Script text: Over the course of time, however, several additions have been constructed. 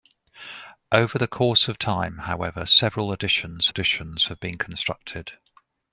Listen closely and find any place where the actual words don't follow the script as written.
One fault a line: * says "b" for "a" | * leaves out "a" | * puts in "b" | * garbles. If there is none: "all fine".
* puts in "additions"